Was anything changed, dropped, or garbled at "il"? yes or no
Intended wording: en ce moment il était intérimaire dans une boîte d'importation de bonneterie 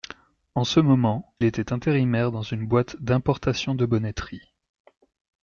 yes